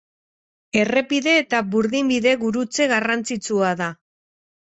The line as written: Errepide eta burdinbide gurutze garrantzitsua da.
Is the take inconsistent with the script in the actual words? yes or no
no